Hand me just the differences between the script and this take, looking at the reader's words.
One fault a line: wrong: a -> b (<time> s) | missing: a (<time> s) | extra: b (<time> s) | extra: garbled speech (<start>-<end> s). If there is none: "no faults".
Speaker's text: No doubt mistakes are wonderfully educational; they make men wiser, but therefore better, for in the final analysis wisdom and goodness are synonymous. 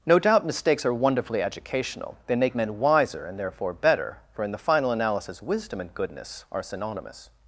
wrong: but -> and (3.2 s)